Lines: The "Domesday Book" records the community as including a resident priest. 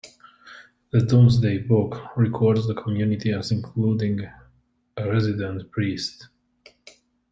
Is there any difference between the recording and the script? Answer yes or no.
no